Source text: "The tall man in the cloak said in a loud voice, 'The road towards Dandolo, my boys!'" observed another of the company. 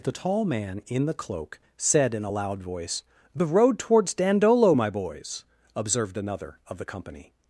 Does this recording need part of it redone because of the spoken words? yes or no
no